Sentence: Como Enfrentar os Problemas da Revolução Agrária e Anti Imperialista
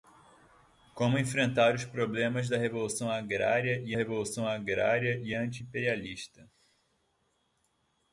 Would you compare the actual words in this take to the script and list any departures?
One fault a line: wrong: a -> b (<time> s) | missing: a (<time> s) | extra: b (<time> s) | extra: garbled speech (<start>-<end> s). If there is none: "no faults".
extra: Revolução Agrária e (3.9 s)